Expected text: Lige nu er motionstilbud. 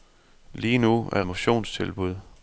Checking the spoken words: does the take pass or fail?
pass